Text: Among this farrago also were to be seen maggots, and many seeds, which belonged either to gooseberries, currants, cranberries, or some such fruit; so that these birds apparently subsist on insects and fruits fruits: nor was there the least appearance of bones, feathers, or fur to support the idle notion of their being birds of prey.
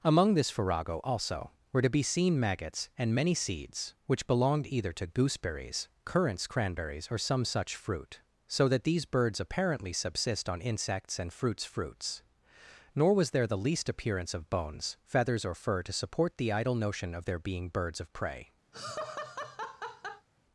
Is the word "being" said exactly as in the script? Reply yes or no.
yes